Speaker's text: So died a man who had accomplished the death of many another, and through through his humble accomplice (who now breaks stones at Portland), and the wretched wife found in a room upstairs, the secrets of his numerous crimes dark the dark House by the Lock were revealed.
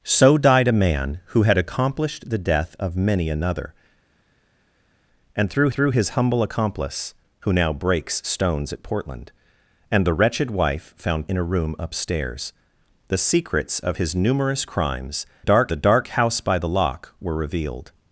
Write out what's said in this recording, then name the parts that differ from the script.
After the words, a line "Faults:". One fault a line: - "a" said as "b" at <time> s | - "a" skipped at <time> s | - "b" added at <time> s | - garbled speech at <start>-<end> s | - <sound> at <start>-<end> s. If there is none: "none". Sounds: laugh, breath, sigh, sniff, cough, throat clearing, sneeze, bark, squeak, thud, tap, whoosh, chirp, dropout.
So died a man who had accomplished the death of many another, and through through his humble accomplice (who now breaks stones at Portland), and the wretched wife found in a room upstairs, the secrets of his numerous crimes dark the dark House by the Lock were revealed.
Faults:
none